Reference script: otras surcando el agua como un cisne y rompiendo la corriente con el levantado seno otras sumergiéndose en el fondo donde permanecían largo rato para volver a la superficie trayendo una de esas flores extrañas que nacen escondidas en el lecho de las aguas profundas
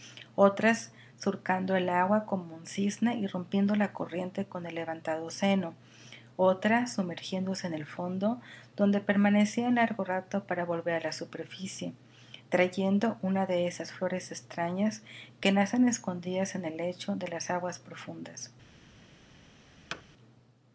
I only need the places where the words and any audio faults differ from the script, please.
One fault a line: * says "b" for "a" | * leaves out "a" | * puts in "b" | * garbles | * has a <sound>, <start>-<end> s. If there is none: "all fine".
* has a thud, 19.9-20.0 s